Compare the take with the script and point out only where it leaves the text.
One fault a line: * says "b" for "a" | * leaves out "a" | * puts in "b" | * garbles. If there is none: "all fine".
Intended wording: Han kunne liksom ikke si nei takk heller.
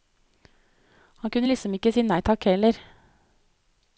all fine